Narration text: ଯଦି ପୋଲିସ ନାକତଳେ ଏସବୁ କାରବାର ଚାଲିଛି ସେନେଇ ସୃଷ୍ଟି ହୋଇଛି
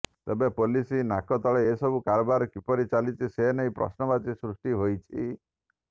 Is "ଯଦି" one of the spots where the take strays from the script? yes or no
yes